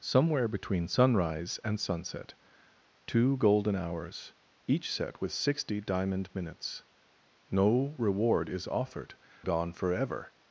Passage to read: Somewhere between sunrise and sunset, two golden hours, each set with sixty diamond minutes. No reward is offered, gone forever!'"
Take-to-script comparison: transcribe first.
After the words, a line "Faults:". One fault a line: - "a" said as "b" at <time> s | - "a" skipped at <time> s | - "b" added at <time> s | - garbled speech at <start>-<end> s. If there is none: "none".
Somewhere between sunrise and sunset, two golden hours, each set with sixty diamond minutes. No reward is offered, gone forever!'"
Faults:
none